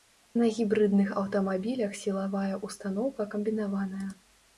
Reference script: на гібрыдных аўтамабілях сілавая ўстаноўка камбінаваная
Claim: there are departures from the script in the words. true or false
false